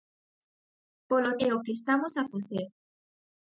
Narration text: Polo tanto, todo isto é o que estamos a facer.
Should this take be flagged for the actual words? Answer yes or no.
yes